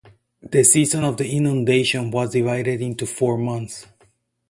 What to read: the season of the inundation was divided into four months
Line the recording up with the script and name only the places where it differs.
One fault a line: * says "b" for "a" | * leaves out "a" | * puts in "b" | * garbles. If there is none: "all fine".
all fine